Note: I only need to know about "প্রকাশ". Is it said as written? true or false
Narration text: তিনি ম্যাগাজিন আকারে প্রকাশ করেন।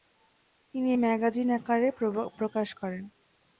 true